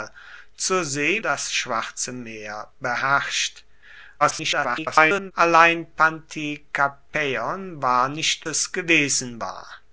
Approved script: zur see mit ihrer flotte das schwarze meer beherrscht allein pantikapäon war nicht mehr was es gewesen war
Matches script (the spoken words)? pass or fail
fail